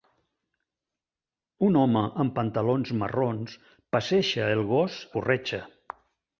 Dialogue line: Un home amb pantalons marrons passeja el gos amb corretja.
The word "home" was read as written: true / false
true